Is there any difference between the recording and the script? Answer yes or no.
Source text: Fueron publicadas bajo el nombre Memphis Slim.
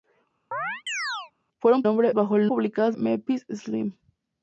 yes